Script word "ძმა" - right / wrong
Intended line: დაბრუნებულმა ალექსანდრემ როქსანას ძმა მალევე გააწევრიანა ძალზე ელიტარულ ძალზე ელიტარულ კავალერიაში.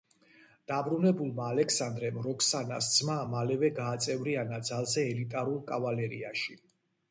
right